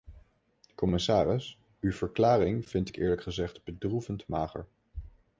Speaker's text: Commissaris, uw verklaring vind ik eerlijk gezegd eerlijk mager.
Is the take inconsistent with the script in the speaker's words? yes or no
yes